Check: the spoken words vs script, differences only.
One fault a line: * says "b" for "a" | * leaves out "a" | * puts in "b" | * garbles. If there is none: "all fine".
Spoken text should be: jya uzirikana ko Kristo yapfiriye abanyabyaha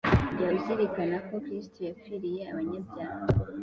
all fine